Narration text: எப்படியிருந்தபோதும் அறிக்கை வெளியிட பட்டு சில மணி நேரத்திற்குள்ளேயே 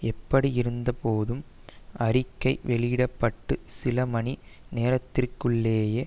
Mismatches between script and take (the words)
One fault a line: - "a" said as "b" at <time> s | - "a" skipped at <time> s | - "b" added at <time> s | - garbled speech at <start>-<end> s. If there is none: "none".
none